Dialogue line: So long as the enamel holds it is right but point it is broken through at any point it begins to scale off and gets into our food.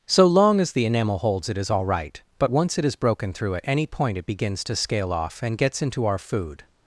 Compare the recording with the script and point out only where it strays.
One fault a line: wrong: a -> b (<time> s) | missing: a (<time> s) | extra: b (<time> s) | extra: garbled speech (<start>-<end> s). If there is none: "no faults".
extra: all (1.7 s)
wrong: point -> once (2.5 s)